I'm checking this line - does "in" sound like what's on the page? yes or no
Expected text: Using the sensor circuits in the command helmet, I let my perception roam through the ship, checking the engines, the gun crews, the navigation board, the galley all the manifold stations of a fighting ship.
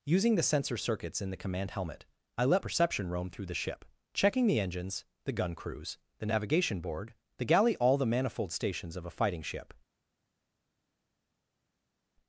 yes